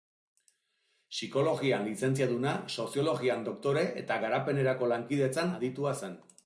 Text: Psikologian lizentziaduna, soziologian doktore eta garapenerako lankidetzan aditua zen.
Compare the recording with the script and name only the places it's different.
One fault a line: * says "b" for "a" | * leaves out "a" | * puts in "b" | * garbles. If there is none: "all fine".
all fine